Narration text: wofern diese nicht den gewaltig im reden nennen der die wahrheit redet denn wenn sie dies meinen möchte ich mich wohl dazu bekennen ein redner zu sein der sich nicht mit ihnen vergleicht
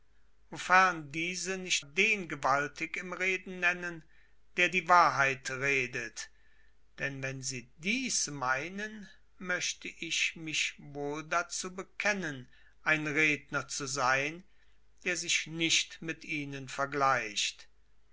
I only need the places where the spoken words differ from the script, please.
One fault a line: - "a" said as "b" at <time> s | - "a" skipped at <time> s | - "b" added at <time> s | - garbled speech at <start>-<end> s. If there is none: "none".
none